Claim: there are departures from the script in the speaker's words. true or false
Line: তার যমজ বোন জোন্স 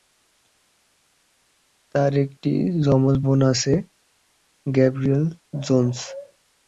true